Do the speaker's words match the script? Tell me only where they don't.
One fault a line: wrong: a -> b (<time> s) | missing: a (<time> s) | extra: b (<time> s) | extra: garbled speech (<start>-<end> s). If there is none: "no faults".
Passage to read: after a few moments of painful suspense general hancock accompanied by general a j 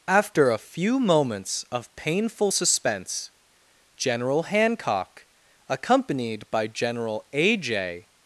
no faults